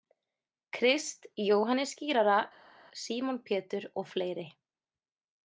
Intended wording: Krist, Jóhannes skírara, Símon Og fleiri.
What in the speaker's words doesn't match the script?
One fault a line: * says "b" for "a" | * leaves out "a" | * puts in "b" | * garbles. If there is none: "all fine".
* puts in "Pétur"